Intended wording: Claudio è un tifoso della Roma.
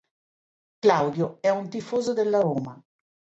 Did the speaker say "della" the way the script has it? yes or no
yes